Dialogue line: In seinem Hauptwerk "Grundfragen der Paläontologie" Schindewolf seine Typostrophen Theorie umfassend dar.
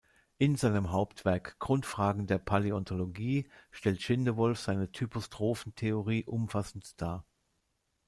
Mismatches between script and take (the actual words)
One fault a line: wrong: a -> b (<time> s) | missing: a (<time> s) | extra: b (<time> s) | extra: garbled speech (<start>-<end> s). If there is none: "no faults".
extra: stellt (3.7 s)